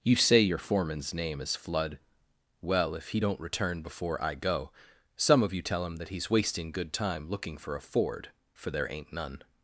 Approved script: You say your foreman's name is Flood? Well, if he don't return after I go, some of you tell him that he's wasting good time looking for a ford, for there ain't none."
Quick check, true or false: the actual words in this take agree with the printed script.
false